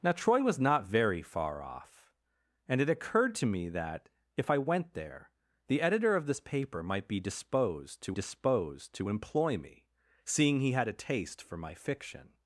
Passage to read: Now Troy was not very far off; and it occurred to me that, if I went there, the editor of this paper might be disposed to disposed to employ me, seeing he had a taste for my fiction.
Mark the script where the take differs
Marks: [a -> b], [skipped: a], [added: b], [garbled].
Now Troy was not very far off; and it occurred to me that, if I went there, the editor of this paper might be disposed to disposed to employ me, seeing he had a taste for my fiction.